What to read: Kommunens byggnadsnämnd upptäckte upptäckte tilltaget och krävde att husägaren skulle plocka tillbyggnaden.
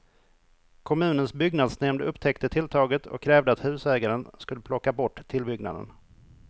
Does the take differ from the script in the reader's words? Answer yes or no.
yes